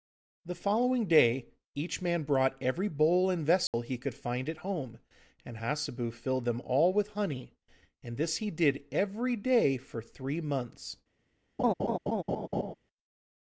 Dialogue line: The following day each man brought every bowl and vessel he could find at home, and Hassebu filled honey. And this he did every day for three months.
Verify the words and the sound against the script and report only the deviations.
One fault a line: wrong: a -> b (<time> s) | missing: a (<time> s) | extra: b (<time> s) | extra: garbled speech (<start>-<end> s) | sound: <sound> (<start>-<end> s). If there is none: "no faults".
sound: dropout (3.7-3.7 s)
extra: them all with (6.4 s)
sound: laugh (11.6-12.7 s)